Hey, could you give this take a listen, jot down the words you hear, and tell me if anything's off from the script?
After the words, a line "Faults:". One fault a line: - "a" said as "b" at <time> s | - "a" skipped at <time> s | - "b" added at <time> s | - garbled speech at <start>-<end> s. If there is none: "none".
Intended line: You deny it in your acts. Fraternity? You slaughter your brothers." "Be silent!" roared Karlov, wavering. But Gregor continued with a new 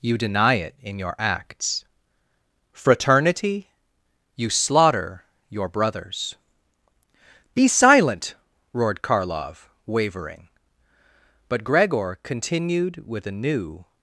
You deny it in your acts. Fraternity? You slaughter your brothers." "Be silent!" roared Karlov, wavering. But Gregor continued with a new
Faults:
none